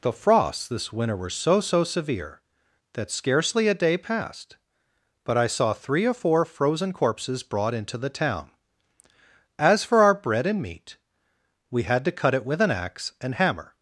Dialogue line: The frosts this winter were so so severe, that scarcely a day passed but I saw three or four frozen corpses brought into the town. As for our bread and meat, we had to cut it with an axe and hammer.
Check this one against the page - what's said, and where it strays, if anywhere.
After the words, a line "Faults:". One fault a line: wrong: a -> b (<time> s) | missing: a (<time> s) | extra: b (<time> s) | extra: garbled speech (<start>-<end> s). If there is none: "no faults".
The frosts this winter were so so severe, that scarcely a day passed but I saw three or four frozen corpses brought into the town. As for our bread and meat, we had to cut it with an axe and hammer.
Faults:
no faults